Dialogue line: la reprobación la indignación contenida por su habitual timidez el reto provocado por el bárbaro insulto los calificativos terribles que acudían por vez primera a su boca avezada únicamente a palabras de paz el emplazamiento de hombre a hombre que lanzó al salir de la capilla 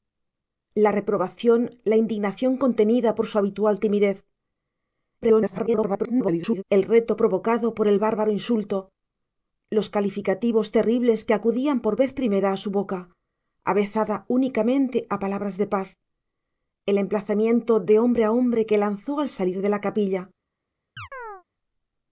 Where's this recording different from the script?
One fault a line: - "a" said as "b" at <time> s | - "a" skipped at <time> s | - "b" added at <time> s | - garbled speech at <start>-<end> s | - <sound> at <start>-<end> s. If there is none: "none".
- garbled speech at 5.2-6.6 s
- chirp at 21.0-21.4 s